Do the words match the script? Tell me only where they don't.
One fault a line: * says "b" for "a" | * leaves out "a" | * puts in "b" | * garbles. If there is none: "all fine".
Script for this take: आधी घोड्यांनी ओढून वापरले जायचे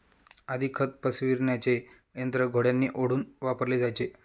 * puts in "खत पसरविण्याचे यंत्र"